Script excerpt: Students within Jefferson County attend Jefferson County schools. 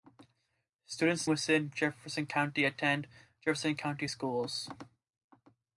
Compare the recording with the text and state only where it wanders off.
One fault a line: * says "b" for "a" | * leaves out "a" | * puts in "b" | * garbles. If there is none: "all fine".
all fine